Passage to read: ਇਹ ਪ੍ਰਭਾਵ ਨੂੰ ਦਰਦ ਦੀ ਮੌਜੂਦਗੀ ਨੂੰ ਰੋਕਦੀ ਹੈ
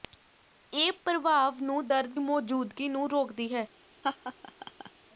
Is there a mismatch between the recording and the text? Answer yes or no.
yes